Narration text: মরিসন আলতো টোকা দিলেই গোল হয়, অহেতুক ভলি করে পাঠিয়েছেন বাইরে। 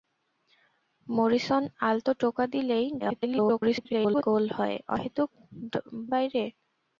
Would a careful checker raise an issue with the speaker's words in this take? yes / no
yes